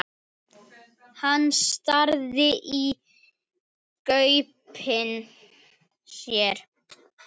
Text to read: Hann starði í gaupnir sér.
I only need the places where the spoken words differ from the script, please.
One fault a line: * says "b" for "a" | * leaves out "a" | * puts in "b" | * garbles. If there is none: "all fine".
all fine